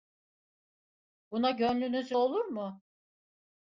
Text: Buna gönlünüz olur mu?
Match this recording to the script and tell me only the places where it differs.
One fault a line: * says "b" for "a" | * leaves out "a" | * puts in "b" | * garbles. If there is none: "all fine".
all fine